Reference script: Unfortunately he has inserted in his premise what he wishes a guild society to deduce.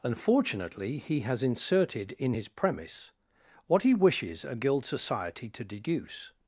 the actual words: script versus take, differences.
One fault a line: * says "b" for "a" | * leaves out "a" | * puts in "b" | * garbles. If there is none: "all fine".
all fine